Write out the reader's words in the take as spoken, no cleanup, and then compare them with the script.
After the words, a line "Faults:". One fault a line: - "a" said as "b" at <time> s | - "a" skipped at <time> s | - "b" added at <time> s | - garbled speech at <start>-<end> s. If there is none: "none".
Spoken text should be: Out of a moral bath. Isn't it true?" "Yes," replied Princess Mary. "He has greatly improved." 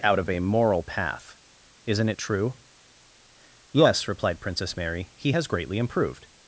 Out of a moral path. Isn't it true?" "Yes," replied Princess Mary. "He has greatly improved."
Faults:
- "bath" said as "path" at 0.8 s